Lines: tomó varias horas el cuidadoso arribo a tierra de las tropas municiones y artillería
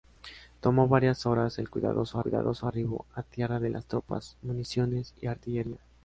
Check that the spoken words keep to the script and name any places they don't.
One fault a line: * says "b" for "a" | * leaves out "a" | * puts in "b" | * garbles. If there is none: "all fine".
* puts in "cuidadoso"